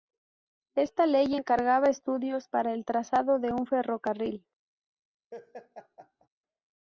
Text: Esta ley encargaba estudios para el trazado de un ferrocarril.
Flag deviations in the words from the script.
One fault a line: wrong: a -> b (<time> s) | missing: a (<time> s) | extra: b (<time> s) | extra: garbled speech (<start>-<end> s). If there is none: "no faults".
no faults